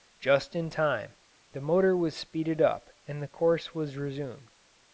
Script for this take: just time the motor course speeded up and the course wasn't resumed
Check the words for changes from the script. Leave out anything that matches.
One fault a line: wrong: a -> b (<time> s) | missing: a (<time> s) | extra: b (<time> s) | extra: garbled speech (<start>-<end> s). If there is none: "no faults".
extra: in (0.6 s)
wrong: course -> was (2.0 s)
wrong: wasn't -> was (3.7 s)